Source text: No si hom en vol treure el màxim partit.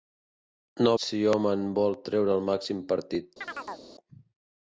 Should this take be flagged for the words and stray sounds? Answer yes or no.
yes